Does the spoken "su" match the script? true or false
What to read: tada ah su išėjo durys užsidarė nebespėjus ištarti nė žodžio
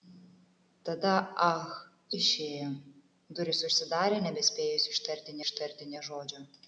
false